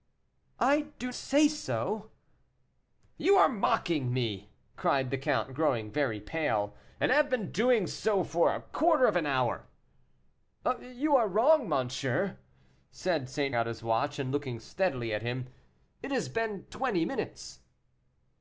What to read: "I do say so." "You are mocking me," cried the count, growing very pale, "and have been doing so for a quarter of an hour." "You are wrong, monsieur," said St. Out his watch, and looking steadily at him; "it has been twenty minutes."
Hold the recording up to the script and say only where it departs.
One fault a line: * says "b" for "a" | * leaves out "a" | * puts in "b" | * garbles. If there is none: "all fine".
all fine